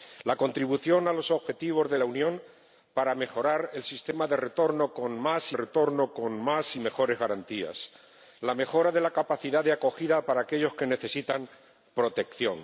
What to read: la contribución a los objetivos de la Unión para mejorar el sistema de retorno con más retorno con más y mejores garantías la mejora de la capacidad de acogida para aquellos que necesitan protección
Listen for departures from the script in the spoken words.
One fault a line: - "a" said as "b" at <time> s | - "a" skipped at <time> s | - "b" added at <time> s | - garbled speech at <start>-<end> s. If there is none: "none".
none